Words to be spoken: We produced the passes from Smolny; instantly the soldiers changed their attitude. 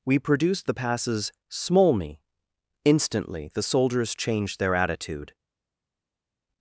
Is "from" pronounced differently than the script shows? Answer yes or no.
yes